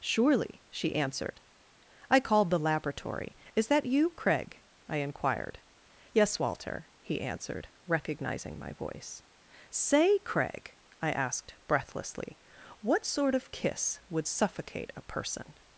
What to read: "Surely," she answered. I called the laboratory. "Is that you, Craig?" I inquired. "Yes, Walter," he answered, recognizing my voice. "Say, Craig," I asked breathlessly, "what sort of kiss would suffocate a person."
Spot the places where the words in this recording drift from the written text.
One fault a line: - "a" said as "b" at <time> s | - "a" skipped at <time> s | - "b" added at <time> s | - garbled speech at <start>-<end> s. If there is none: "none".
none